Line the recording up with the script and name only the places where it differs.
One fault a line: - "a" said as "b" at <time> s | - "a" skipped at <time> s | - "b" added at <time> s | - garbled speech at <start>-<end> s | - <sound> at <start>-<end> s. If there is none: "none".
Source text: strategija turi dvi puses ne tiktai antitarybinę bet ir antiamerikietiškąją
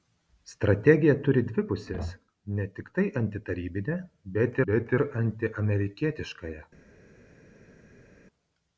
- "bet" added at 4.7 s